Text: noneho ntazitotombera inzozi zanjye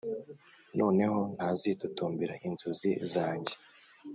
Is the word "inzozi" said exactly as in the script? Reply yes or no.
yes